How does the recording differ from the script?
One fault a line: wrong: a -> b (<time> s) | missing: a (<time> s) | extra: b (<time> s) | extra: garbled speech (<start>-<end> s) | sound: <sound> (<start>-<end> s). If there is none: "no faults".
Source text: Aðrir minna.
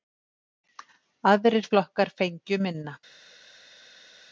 extra: flokkar fengju (1.7 s)